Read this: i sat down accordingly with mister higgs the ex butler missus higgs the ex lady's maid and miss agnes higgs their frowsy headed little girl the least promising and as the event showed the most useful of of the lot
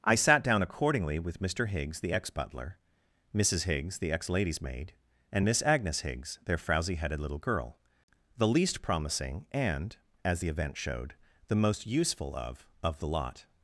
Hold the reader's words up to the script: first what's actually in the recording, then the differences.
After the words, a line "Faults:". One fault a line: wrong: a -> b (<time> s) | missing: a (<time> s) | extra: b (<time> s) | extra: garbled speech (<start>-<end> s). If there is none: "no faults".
i sat down accordingly with mister higgs the ex butler missus higgs the ex lady's maid and miss agnes higgs their frowsy headed little girl the least promising and as the event showed the most useful of of the lot
Faults:
no faults